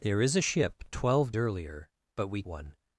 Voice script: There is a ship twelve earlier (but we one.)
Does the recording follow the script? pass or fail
pass